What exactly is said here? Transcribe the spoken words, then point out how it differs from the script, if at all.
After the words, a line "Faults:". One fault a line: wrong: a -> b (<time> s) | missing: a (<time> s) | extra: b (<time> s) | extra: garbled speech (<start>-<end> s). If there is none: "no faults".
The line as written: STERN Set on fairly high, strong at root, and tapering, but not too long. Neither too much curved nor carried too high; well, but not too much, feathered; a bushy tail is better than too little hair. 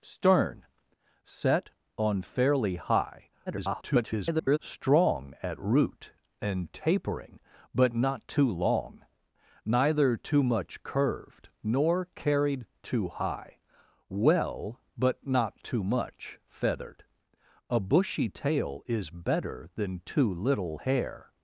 STERN Set on fairly high, [garbled] strong at root, and tapering, but not too long. Neither too much curved nor carried too high; well, but not too much, feathered; a bushy tail is better than too little hair.
Faults:
extra: garbled speech (3.5-4.6 s)